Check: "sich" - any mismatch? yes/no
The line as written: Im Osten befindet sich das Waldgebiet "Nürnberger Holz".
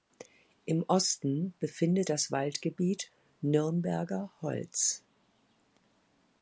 yes